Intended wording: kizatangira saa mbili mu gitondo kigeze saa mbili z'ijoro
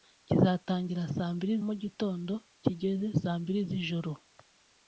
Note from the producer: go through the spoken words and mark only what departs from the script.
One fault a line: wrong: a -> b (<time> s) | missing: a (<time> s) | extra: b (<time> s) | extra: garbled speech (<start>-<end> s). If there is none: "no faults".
no faults